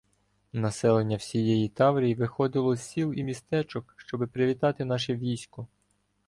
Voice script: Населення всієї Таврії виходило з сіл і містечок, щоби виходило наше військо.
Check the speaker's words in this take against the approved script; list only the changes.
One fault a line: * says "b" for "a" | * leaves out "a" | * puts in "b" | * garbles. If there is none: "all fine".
* says "привітати" for "виходило"